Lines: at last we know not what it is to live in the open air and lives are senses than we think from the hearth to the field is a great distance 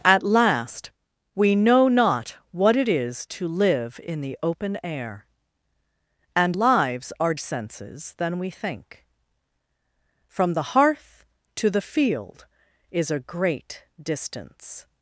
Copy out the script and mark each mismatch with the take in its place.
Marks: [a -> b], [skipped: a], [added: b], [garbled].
at last we know not what it is to live in the open air and lives are senses than we think from the hearth to the field is a great distance